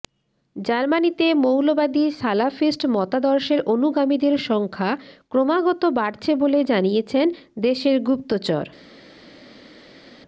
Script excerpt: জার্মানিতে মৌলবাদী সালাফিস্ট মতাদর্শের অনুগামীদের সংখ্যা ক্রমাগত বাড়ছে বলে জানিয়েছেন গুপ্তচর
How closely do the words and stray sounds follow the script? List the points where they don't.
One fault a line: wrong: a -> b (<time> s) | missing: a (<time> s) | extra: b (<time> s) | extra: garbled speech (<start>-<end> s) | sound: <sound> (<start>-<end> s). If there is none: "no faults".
extra: দেশের (7.6 s)